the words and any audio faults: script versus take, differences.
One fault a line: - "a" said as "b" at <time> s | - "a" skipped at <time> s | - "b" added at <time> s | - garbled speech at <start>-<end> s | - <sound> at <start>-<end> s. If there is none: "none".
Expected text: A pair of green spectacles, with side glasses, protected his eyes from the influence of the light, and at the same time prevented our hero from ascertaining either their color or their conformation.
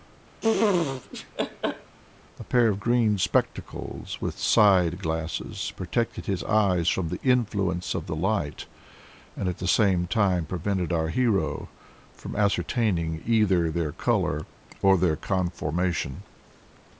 - laugh at 0.4-2.0 s